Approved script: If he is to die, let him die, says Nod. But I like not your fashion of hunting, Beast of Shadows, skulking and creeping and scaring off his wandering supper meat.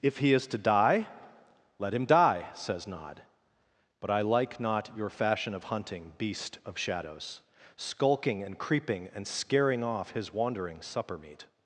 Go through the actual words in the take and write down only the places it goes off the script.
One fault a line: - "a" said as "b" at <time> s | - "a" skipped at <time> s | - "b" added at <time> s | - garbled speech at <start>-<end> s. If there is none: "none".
none